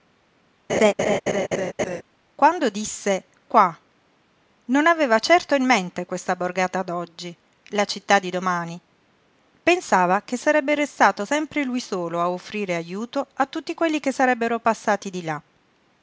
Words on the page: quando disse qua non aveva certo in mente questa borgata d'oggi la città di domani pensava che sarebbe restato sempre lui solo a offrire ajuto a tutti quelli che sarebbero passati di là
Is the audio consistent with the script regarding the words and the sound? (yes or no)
no